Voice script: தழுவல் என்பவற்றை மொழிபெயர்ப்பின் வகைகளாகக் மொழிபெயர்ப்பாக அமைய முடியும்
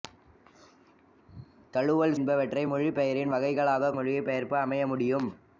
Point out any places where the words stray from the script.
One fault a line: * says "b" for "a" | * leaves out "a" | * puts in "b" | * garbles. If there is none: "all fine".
all fine